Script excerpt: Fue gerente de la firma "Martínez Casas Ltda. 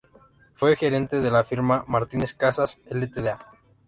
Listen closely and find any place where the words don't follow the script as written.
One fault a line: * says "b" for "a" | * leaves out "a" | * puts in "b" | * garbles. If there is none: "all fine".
all fine